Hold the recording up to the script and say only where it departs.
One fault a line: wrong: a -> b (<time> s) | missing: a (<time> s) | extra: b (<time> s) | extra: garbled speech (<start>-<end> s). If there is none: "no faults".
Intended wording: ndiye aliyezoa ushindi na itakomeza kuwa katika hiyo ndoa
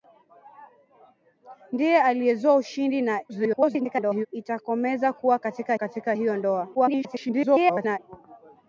extra: garbled speech (3.3-4.3 s)
extra: katika (5.7 s)
extra: garbled speech (6.7-8.0 s)